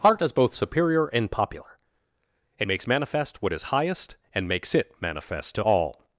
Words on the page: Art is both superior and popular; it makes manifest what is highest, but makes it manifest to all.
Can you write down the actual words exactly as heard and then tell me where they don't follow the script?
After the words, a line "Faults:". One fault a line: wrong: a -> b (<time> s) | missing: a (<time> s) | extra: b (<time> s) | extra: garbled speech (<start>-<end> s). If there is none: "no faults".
Art is both superior and popular; it makes manifest what is highest, and makes it manifest to all.
Faults:
wrong: but -> and (4.3 s)